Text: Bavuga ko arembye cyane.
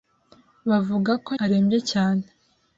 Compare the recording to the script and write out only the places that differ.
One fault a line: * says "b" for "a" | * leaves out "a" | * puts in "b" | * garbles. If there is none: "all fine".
all fine